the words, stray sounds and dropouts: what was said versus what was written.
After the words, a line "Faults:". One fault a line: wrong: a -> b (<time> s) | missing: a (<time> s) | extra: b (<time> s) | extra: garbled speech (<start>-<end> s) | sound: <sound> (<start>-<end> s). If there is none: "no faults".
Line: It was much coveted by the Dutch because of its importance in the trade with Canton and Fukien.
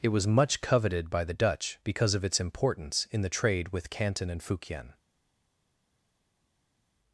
It was much coveted by the Dutch because of its importance in the trade with Canton and Fukien.
Faults:
no faults